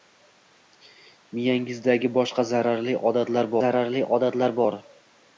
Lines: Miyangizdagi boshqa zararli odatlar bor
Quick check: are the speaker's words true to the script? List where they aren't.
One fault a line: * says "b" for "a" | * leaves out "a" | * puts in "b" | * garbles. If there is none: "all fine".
* puts in "zararli odatlar"